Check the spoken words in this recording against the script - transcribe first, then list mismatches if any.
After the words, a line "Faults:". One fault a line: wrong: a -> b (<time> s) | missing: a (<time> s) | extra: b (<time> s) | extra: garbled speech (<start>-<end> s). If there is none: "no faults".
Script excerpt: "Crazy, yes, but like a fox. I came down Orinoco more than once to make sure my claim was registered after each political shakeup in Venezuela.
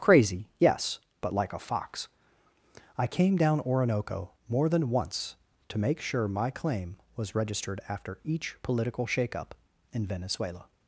"Crazy, yes, but like a fox. I came down Orinoco more than once to make sure my claim was registered after each political shakeup in Venezuela.
Faults:
no faults